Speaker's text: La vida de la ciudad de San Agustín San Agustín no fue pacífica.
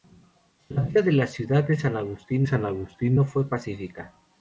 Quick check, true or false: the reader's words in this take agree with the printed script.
true